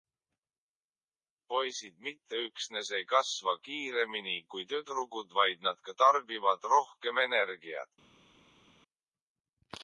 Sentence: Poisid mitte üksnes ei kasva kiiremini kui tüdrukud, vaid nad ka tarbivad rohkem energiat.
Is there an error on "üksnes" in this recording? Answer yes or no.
no